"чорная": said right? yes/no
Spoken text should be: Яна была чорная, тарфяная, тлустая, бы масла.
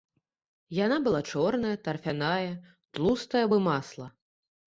yes